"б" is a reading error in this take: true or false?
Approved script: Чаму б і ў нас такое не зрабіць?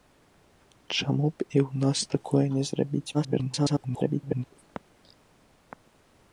false